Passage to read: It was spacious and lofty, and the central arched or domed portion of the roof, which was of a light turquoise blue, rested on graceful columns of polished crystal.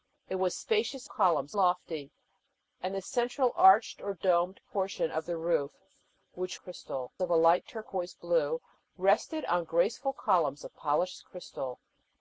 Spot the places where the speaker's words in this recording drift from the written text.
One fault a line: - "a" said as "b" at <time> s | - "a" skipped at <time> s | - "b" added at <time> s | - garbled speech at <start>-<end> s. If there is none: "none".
- "and" said as "columns" at 1.1 s
- "was" said as "crystal" at 6.6 s